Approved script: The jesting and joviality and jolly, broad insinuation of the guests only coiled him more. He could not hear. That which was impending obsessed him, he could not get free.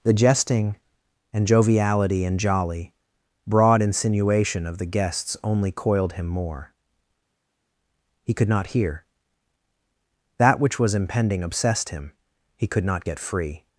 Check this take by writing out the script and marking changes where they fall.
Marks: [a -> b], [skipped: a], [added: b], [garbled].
The jesting and joviality and jolly, broad insinuation of the guests only coiled him more. He could not hear. That which was impending obsessed him, he could not get free.